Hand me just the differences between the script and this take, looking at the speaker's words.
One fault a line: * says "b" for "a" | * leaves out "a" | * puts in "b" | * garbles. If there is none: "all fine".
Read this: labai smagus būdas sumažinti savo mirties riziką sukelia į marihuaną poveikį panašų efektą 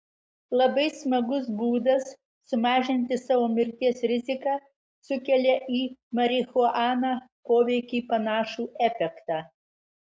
all fine